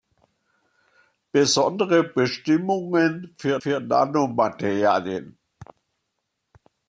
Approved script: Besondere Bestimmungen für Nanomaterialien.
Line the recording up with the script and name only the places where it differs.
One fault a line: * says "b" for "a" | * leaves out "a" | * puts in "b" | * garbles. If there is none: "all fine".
* puts in "für"